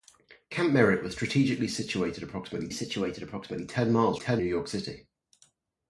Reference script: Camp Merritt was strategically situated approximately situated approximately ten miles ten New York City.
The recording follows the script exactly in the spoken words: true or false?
true